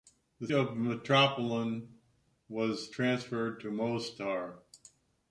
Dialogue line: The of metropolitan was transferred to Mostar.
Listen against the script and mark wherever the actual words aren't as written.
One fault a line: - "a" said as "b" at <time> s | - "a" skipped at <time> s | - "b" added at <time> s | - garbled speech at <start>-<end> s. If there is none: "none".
none